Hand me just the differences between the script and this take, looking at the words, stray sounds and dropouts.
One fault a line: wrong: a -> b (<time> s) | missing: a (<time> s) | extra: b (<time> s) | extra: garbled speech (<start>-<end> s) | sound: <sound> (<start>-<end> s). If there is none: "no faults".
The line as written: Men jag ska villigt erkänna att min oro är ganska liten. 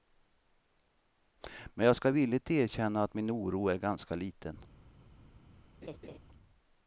sound: laugh (5.8-6.2 s)